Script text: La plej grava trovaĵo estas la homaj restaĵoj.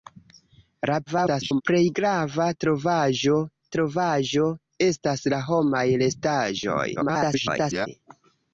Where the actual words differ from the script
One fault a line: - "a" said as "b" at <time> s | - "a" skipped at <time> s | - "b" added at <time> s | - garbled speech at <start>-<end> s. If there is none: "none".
- garbled speech at 1.1-1.6 s
- "trovaĵo" added at 3.8 s
- garbled speech at 7.0-7.9 s